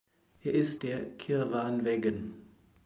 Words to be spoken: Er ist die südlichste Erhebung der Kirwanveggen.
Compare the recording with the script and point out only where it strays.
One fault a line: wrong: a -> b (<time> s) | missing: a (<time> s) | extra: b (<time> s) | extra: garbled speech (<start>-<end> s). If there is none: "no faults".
missing: die südlichste Erhebung (0.8 s)